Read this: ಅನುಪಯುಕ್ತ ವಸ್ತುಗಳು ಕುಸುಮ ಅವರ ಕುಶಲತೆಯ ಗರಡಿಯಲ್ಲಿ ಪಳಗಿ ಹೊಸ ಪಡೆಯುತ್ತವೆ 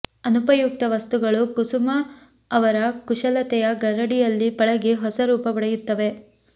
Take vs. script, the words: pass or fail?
fail